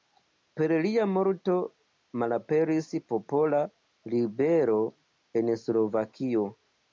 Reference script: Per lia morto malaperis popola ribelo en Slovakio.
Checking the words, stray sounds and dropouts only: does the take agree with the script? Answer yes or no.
yes